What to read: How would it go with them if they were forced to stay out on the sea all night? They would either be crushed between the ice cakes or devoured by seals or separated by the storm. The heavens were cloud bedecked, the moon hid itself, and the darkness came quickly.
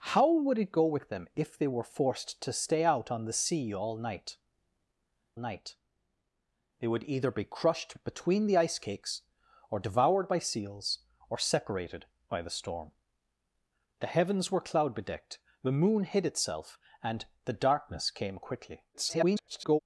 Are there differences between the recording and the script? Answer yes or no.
yes